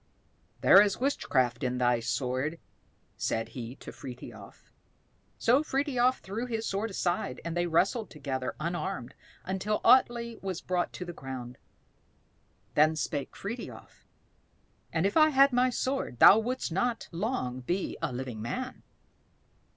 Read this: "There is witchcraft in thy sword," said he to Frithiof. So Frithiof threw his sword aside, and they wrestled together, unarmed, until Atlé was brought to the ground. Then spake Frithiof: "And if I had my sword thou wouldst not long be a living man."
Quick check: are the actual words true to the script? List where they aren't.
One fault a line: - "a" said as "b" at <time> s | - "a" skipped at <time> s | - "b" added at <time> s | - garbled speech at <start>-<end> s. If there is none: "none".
none